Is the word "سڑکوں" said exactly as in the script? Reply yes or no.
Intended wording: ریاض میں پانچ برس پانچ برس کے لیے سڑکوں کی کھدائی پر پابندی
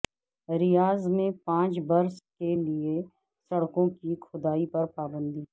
yes